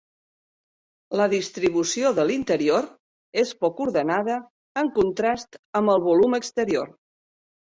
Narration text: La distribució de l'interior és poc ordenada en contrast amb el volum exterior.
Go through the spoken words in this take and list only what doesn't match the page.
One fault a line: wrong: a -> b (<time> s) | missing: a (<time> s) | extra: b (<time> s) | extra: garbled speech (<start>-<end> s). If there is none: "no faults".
no faults